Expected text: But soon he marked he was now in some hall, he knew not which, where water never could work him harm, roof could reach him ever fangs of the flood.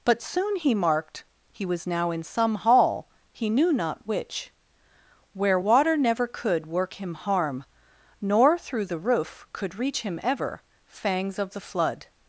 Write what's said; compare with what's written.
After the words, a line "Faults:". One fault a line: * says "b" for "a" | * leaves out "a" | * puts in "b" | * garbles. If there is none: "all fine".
But soon he marked he was now in some hall, he knew not which, where water never could work him harm, nor through the roof could reach him ever fangs of the flood.
Faults:
* puts in "nor through the"